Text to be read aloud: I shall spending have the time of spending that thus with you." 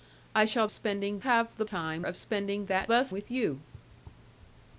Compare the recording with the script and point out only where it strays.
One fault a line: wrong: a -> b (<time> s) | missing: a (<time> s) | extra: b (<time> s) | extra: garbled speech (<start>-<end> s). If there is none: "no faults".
no faults